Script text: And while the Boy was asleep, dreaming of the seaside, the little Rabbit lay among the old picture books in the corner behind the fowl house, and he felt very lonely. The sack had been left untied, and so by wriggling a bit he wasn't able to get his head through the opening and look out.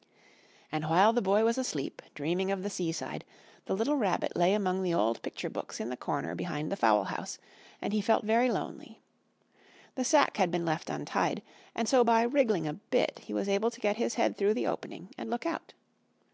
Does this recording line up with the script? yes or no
no